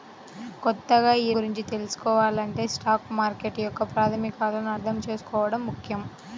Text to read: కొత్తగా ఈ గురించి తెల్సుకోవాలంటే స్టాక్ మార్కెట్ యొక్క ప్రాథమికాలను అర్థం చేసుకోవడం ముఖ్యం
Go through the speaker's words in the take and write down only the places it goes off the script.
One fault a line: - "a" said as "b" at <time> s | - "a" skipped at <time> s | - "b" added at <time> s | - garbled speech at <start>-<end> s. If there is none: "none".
none